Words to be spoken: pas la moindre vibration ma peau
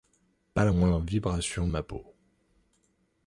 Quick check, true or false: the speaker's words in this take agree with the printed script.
true